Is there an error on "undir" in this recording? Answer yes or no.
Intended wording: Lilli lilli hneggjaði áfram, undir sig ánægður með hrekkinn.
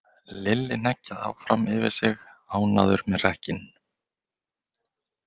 yes